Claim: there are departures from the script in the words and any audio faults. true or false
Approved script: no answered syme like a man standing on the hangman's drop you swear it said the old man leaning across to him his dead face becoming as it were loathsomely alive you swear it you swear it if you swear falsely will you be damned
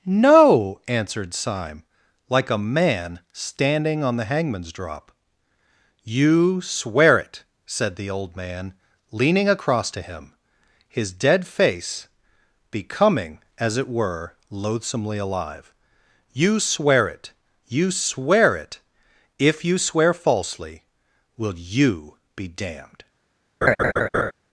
true